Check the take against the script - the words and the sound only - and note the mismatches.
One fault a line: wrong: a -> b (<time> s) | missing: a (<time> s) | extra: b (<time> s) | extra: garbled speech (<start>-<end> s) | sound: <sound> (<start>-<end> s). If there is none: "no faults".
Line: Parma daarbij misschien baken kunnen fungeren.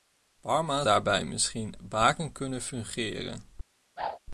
sound: whoosh (4.0-4.2 s)